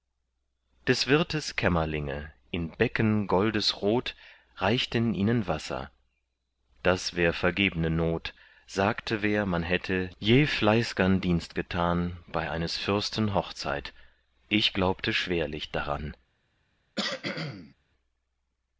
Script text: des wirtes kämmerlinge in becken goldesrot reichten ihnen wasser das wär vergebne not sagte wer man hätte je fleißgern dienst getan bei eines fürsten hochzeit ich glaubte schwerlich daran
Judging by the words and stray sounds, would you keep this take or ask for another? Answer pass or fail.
fail